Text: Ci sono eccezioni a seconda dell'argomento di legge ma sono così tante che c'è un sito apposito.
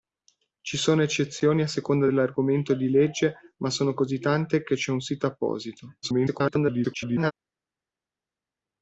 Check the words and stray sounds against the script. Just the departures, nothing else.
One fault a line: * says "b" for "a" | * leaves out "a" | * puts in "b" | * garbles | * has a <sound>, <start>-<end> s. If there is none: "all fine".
* garbles